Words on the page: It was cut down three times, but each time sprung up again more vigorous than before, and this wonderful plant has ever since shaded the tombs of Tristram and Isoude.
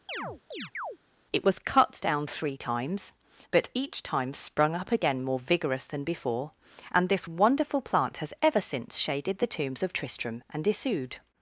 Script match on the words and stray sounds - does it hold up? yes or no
no